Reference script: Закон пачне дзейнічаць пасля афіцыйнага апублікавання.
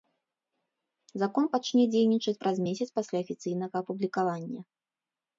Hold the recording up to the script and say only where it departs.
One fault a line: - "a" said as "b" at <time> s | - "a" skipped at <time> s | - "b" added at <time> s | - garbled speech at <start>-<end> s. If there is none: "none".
- "праз месяц" added at 2.4 s